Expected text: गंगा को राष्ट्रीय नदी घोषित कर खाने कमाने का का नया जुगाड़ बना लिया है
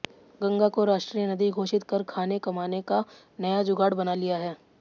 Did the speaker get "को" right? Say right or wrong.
right